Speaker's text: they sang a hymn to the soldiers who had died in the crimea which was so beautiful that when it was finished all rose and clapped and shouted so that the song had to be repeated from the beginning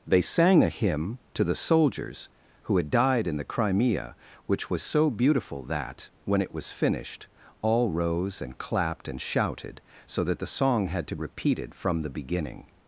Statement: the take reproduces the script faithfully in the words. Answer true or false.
false